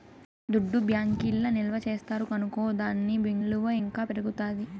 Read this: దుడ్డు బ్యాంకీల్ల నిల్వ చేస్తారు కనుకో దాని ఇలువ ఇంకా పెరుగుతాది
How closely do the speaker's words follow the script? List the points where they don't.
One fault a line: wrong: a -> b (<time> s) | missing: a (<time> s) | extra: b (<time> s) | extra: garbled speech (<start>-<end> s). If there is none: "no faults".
no faults